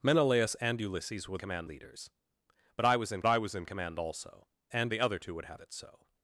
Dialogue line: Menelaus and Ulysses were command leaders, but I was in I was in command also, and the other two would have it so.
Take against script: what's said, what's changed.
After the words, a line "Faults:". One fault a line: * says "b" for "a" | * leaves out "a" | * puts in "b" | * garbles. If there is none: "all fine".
Menelaus and Ulysses were command leaders, but I was in I was in command also, and the other two would have it so.
Faults:
all fine